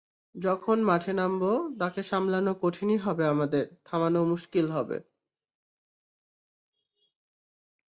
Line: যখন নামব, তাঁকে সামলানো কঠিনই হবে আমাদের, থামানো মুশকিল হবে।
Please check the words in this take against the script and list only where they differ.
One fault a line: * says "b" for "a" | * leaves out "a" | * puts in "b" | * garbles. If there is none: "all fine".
* puts in "মাঠে"